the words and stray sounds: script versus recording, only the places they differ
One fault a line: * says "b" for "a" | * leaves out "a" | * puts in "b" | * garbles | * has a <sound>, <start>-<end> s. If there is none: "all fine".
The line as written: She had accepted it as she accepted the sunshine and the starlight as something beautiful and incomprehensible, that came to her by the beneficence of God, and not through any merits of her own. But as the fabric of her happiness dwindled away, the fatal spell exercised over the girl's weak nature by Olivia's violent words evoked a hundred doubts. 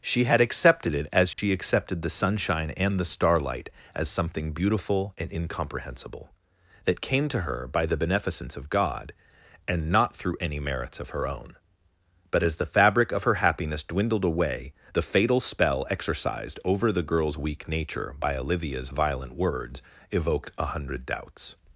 * has a dropout, 1.3-1.4 s